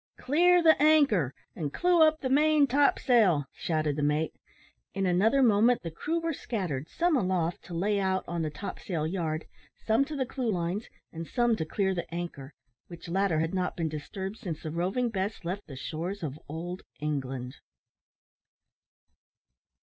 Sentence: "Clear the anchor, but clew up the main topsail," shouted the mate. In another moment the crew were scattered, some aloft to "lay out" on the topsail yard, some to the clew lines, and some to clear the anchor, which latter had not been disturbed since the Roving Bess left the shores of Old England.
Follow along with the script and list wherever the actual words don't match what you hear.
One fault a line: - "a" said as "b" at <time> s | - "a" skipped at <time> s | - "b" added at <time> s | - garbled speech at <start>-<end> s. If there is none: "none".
- "but" said as "and" at 1.6 s